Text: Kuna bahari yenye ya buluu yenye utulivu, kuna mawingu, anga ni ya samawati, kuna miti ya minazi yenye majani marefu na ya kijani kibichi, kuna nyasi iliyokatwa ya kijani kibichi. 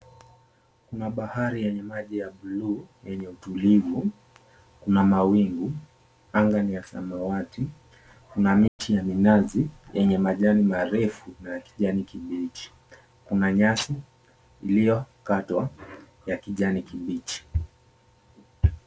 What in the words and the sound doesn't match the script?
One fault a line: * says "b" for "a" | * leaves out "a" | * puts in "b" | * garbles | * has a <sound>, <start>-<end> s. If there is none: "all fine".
* puts in "maji"
* has a dropout, 8.7-8.8 s